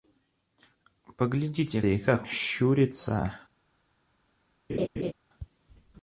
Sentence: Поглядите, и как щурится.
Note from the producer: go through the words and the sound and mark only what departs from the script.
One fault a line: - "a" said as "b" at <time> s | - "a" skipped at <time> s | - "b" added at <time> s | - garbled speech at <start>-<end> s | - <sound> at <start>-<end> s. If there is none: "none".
- laugh at 4.7-5.1 s